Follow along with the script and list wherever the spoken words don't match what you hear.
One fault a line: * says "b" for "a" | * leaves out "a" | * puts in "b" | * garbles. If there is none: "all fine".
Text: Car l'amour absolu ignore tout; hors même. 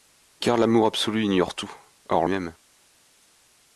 all fine